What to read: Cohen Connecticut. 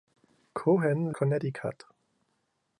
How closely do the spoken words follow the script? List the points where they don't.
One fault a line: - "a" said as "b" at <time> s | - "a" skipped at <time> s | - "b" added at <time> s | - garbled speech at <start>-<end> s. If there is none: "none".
none